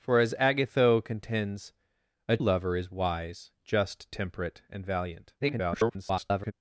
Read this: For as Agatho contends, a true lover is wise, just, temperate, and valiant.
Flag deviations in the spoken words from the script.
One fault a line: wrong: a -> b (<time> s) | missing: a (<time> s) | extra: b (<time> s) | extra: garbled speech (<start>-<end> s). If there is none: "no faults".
missing: true (2.4 s)
extra: garbled speech (5.4-6.5 s)